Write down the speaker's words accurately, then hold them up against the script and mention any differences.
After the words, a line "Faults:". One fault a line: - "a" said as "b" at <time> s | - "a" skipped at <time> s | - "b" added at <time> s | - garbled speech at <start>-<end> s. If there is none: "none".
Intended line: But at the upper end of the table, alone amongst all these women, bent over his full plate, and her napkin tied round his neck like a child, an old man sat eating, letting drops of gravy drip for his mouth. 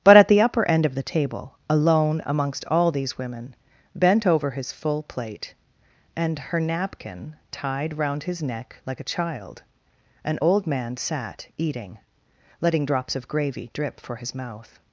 But at the upper end of the table, alone amongst all these women, bent over his full plate, and her napkin tied round his neck like a child, an old man sat eating, letting drops of gravy drip for his mouth.
Faults:
none